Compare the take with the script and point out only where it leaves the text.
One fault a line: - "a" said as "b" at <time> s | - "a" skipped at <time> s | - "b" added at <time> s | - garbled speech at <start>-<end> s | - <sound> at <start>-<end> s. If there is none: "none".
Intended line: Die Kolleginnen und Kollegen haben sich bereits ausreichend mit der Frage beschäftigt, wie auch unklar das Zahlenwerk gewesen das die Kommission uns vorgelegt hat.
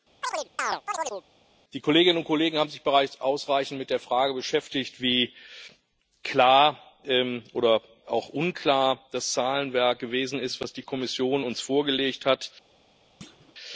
- chirp at 0.2-1.2 s
- "klar oder" added at 6.2 s
- "ist" added at 10.4 s
- thud at 13.2-13.5 s